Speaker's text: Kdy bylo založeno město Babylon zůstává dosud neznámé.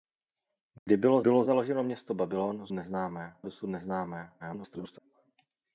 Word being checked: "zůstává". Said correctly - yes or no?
no